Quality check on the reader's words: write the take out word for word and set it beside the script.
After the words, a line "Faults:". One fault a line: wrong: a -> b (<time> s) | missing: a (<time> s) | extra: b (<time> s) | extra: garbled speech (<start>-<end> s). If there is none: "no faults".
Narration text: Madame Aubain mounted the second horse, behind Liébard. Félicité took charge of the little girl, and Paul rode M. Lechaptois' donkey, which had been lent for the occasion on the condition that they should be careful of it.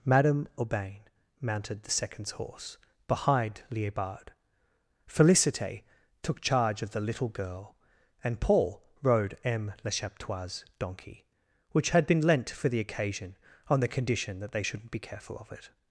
Madame Aubain mounted the seconds horse, behind Liébard. Félicité took charge of the little girl, and Paul rode M. Lechaptois' donkey, which had been lent for the occasion on the condition that they shouldn't be careful of it.
Faults:
wrong: second -> seconds (1.9 s)
wrong: should -> shouldn't (14.6 s)